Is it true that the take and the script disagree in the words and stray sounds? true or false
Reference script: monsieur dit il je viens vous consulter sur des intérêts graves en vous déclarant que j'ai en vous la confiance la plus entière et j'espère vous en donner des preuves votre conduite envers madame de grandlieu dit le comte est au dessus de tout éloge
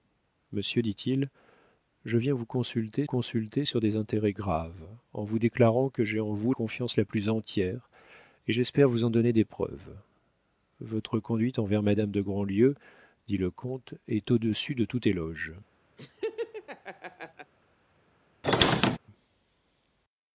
true